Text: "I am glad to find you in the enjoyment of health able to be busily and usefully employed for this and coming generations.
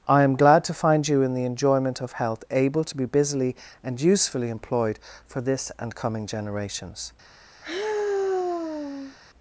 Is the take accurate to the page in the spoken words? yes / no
yes